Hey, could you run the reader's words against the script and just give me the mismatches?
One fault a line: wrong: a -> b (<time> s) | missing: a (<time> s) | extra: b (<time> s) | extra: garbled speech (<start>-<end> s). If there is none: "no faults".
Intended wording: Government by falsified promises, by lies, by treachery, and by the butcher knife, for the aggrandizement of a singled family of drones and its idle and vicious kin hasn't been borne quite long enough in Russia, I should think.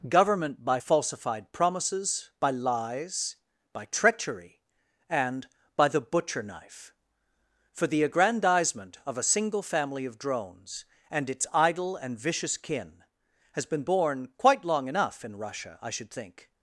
wrong: singled -> single (9.2 s)
wrong: hasn't -> has (13.5 s)